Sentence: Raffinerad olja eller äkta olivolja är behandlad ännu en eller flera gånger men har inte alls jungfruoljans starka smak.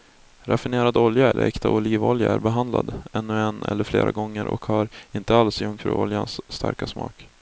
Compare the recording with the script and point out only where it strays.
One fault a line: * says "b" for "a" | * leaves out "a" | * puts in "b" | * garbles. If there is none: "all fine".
* says "och" for "men"